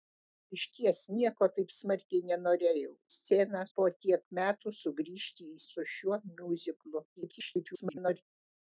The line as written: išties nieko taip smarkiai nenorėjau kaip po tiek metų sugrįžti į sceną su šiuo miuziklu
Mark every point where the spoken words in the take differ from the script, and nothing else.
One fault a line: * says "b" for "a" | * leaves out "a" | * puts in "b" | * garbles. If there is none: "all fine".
* says "sceną" for "kaip"
* leaves out "sceną"
* garbles